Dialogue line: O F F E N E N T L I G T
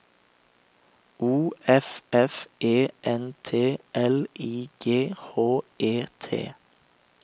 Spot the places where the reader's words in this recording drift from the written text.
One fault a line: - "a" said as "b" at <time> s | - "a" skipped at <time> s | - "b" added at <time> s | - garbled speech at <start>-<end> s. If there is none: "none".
- "E N" skipped at 3.4 s
- "H E" added at 5.4 s